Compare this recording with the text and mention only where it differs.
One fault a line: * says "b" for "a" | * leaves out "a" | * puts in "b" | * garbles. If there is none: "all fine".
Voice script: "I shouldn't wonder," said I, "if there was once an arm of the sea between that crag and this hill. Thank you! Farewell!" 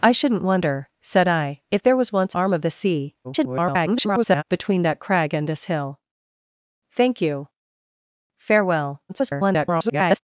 * leaves out "an"
* garbles
* garbles